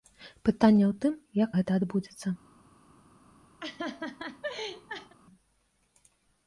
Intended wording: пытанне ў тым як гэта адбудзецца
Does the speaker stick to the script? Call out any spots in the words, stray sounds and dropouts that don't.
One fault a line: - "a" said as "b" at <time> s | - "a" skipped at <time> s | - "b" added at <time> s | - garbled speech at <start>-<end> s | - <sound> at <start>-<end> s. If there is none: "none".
- laugh at 3.6-5.1 s